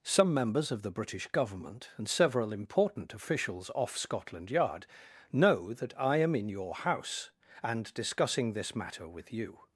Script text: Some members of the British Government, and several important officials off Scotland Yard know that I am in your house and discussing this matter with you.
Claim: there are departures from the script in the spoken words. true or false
false